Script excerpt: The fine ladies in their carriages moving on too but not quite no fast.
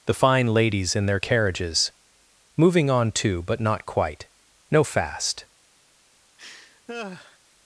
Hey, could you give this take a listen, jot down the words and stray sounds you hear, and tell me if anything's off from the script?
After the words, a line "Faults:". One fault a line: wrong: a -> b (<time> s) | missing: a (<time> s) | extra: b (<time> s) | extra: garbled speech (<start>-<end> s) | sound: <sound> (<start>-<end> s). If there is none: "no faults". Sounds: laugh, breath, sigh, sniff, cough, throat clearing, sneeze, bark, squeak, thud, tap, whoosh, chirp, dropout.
The fine ladies in their carriages moving on too but not quite no fast.
Faults:
sound: laugh (6.4-7.4 s)